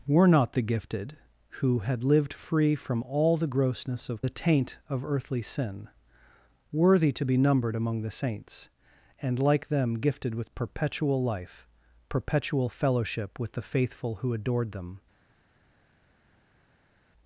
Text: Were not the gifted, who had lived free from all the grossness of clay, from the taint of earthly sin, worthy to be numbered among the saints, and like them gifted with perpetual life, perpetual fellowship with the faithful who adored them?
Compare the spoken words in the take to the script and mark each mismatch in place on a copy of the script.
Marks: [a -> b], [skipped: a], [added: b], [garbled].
Were not the gifted, who had lived free from all the grossness of [skipped: clay, from] the taint of earthly sin, worthy to be numbered among the saints, and like them gifted with perpetual life, perpetual fellowship with the faithful who adored them?